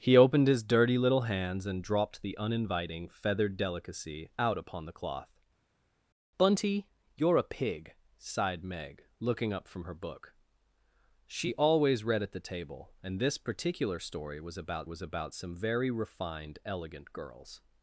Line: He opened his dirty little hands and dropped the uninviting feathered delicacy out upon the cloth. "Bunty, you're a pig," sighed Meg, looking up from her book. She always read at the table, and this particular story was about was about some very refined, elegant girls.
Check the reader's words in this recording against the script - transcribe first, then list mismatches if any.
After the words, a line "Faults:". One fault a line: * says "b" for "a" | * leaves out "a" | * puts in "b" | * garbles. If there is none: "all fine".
He opened his dirty little hands and dropped the uninviting feathered delicacy out upon the cloth. "Bunty, you're a pig," sighed Meg, looking up from her book. She always read at the table, and this particular story was about was about some very refined, elegant girls.
Faults:
all fine